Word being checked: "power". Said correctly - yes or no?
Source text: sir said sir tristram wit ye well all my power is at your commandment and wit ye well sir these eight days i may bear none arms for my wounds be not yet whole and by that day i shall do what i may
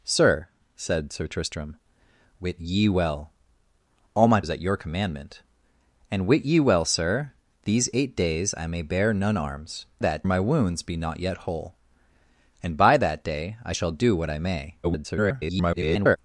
no